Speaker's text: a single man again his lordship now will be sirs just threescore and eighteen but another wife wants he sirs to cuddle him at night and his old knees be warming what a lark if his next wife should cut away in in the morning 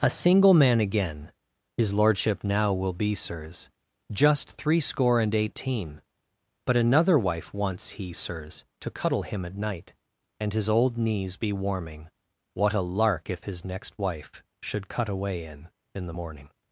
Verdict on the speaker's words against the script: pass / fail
pass